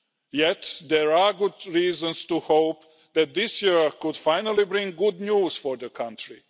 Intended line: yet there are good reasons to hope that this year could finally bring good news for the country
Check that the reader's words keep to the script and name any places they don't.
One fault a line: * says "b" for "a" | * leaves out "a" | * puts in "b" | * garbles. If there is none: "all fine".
all fine